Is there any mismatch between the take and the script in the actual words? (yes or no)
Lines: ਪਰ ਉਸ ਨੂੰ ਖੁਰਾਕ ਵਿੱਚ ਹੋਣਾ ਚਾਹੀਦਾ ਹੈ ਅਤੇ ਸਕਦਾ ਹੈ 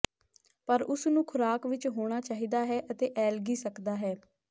yes